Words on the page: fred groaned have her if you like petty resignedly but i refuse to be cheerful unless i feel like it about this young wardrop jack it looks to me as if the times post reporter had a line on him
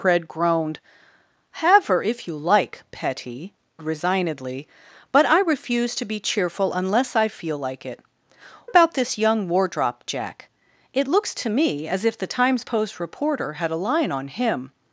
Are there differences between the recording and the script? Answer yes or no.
no